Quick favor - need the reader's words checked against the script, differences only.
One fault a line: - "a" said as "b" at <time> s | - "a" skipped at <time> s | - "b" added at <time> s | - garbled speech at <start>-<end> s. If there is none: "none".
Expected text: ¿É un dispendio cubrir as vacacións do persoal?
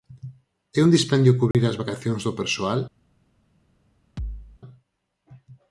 none